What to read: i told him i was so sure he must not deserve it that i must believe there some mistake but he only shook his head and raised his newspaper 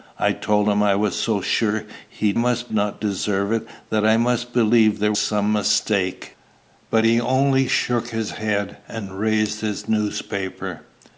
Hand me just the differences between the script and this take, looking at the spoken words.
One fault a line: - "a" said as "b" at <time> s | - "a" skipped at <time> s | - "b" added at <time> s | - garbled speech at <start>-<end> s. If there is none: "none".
none